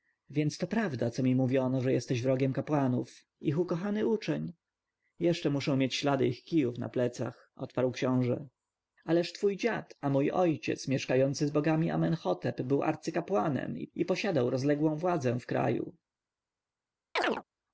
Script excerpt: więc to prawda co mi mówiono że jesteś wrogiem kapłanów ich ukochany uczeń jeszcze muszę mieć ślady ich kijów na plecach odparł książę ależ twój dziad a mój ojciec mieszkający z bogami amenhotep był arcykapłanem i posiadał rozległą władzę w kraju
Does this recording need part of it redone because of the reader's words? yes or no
no